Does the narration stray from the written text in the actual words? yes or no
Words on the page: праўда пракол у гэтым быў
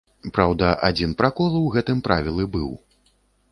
yes